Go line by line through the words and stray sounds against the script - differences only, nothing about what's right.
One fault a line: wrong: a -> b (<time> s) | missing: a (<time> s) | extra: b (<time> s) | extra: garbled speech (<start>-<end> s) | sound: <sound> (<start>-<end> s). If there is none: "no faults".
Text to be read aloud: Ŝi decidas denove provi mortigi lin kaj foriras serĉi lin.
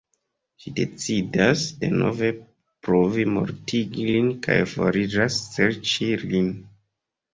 no faults